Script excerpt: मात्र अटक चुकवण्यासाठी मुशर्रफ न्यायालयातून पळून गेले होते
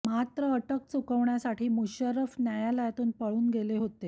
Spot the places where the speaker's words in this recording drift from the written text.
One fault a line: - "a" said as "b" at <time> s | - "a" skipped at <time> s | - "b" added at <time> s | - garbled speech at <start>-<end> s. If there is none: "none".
none